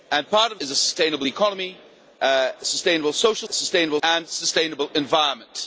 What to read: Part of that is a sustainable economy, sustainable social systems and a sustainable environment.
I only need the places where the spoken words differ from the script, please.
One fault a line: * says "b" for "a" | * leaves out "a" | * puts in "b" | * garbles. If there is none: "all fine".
* leaves out "that"
* says "sustainable" for "systems"